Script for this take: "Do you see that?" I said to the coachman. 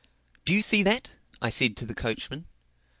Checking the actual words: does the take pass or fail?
pass